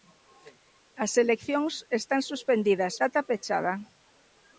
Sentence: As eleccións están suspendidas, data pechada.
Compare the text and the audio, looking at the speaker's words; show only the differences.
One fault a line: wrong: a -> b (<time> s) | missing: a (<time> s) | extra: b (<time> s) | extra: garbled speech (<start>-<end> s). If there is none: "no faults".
no faults